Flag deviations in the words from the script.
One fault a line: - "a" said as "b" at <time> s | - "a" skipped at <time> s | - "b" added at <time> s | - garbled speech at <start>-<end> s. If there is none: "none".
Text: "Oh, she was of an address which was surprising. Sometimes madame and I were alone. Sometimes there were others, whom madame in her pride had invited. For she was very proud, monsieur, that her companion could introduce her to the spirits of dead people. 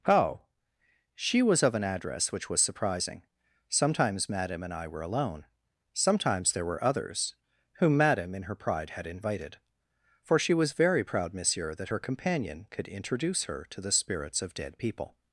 none